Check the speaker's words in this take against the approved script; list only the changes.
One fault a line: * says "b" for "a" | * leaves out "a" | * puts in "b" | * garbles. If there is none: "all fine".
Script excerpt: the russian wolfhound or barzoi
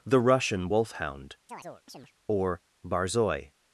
all fine